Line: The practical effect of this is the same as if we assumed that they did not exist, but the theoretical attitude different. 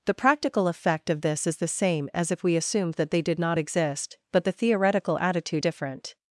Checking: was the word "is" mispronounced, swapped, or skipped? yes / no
no